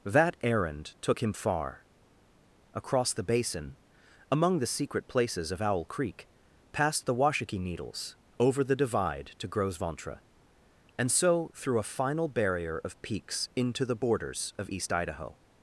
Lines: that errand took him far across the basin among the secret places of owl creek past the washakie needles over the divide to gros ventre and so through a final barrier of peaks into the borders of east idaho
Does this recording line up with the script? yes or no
yes